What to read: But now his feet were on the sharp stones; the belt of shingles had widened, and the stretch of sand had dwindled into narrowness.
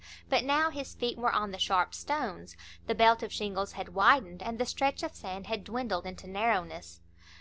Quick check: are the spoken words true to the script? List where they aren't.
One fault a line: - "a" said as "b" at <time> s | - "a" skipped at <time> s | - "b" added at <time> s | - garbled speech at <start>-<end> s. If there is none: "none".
none